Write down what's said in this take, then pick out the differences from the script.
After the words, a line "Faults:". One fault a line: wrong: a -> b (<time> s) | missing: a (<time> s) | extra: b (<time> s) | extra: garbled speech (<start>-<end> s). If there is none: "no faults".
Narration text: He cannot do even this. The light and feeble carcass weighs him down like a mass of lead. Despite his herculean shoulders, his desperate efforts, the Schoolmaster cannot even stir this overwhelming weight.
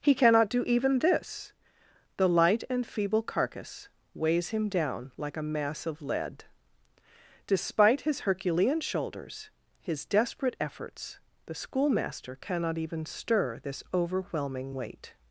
He cannot do even this. The light and feeble carcass weighs him down like a mass of lead. Despite his herculean shoulders, his desperate efforts, the Schoolmaster cannot even stir this overwhelming weight.
Faults:
no faults